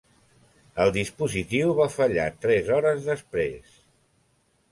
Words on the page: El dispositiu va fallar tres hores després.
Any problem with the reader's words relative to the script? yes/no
no